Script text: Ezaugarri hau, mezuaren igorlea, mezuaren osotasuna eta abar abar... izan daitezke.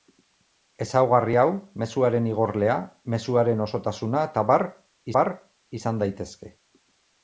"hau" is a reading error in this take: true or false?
false